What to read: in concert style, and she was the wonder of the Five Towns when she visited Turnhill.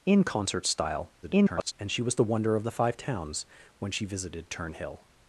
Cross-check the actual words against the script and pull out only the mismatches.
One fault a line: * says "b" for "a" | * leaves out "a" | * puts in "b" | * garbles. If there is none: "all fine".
* garbles